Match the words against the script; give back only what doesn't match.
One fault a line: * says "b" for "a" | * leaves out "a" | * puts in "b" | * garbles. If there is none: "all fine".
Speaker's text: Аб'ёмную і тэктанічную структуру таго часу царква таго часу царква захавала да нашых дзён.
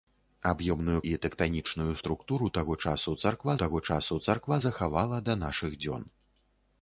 all fine